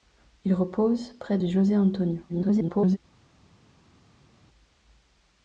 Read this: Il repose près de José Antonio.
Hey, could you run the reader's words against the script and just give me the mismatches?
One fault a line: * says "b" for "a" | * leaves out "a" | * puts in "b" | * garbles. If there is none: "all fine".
* garbles